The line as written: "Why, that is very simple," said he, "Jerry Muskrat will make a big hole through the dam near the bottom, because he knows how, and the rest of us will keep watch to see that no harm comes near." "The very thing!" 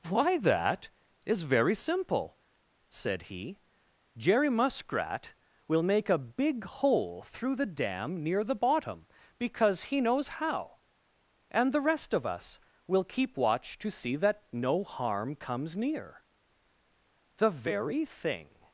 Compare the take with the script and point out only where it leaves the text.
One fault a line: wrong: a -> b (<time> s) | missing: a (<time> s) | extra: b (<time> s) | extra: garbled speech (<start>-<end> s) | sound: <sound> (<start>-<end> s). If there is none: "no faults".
no faults